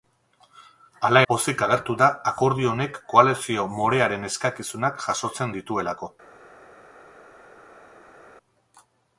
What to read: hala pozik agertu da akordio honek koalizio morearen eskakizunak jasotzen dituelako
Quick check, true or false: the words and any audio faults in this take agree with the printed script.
true